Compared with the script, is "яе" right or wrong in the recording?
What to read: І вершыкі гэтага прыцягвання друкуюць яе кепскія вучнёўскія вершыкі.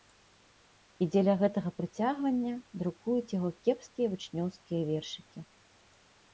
wrong